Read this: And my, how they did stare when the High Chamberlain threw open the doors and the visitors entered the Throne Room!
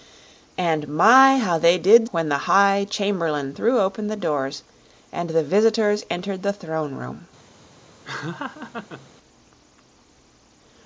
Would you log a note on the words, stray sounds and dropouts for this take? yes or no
yes